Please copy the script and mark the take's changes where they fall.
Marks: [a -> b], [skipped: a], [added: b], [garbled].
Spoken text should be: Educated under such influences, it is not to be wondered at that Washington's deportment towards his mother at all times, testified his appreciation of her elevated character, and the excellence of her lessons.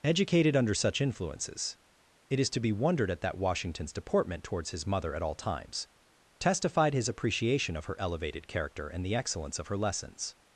Educated under such influences, it is [skipped: not] to be wondered at that Washington's deportment towards his mother at all times, testified his appreciation of her elevated character, and the excellence of her lessons.